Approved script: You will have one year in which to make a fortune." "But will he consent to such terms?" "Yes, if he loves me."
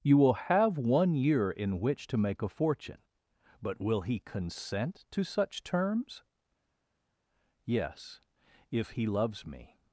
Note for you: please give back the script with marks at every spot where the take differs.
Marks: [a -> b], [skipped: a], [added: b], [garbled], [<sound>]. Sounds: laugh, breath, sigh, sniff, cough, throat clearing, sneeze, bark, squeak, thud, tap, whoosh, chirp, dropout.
You will have one year in which to make a fortune." "But will he consent to such terms?" "Yes, if he loves me."